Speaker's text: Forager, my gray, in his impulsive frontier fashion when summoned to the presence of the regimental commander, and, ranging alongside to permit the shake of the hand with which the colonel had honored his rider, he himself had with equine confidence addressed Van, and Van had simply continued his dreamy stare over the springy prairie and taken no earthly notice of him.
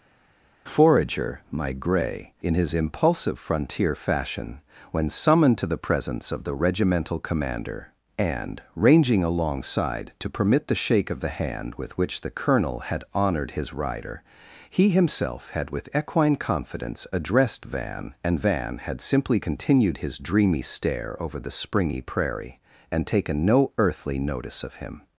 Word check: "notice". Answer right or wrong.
right